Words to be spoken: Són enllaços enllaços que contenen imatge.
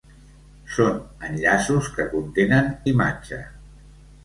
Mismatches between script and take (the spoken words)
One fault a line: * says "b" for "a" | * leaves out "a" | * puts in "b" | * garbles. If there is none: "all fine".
* leaves out "enllaços"